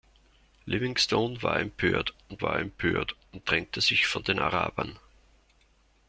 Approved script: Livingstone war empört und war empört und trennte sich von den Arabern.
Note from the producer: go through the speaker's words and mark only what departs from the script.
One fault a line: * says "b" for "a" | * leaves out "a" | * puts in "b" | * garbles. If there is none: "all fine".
all fine